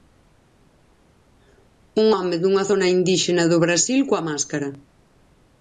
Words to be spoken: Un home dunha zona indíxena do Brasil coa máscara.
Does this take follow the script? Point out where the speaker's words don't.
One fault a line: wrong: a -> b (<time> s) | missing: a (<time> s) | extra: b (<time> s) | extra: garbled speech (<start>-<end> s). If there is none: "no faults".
no faults